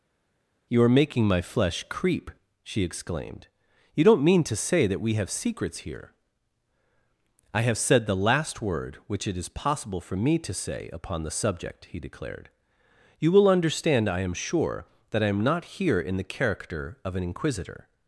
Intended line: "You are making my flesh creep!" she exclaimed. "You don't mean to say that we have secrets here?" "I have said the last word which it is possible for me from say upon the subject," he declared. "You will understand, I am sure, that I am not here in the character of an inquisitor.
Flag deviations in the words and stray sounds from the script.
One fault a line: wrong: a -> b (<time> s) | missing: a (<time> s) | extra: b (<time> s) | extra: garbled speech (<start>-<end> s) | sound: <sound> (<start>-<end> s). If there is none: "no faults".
wrong: from -> to (10.4 s)